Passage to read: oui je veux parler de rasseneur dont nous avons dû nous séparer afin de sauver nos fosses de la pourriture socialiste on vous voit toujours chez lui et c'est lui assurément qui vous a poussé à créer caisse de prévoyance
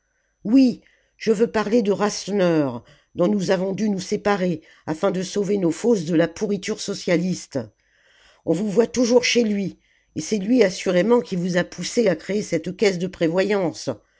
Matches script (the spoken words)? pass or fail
fail